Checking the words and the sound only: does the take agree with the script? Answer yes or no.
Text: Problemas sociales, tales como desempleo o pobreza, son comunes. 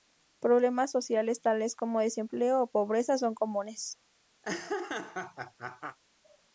no